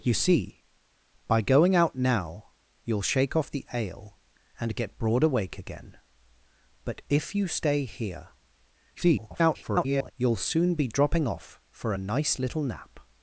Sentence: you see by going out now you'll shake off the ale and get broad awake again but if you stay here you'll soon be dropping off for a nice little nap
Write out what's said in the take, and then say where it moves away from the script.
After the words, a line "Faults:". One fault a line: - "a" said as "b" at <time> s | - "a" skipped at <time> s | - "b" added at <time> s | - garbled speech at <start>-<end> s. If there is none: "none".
you see by going out now you'll shake off the ale and get broad awake again but if you stay here [garbled] you'll soon be dropping off for a nice little nap
Faults:
- garbled speech at 8.9-10.1 s